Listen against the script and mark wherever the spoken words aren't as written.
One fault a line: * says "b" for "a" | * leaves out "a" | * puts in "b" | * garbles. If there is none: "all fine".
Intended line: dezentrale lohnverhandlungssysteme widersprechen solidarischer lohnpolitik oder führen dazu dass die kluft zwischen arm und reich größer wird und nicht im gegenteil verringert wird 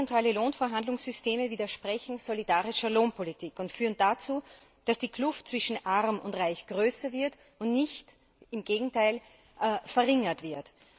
* says "und" for "oder"